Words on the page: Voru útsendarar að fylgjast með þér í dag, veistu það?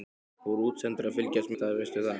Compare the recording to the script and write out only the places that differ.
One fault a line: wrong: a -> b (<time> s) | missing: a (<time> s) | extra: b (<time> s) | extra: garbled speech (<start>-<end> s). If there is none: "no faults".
missing: með þér (1.5 s)